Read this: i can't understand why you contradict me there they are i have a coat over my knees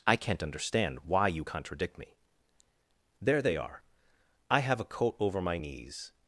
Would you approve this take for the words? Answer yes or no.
yes